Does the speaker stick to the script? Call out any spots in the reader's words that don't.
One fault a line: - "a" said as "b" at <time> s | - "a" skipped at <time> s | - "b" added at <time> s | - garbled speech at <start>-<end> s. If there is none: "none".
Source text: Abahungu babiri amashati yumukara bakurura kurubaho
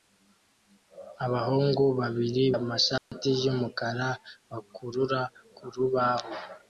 none